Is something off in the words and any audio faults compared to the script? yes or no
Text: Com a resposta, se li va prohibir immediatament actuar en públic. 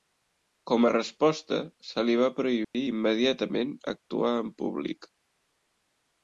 yes